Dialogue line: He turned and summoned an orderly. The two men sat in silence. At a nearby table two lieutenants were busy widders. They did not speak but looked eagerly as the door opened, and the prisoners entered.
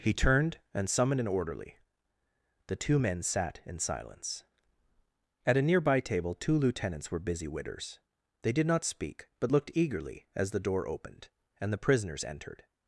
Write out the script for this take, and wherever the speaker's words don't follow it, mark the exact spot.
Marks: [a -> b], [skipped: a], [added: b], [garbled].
He turned and summoned an orderly. The two men sat in silence. At a nearby table two lieutenants were busy widders. They did not speak but looked eagerly as the door opened, and the prisoners entered.